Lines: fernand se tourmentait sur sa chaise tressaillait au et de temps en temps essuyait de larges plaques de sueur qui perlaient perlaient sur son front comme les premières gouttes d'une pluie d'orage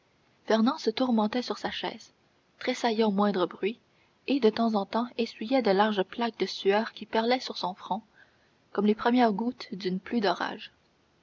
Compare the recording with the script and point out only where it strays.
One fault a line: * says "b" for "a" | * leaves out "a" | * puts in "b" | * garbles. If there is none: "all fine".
* puts in "moindre bruit"
* leaves out "perlaient"